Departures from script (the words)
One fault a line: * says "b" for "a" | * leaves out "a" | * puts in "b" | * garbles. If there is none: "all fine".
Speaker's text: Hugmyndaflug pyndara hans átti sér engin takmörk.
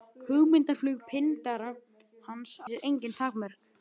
* leaves out "átti"